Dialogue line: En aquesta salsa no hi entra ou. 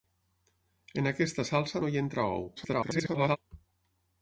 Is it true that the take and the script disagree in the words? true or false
true